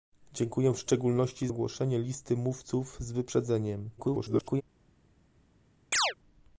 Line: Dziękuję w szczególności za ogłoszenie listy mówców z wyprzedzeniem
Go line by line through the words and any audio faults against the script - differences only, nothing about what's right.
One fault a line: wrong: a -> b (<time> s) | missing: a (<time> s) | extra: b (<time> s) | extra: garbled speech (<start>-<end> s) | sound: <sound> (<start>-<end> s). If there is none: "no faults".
missing: za (1.5 s)
extra: garbled speech (4.0-4.6 s)
sound: chirp (5.9-6.1 s)